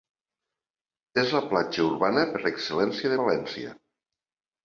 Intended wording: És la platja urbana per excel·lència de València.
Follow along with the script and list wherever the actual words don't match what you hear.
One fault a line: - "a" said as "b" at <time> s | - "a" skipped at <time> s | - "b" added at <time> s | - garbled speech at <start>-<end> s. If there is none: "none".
none